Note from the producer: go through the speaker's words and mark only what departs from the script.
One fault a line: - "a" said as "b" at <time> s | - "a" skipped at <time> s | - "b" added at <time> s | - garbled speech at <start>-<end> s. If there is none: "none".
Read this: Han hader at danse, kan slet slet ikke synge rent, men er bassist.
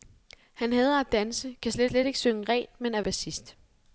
none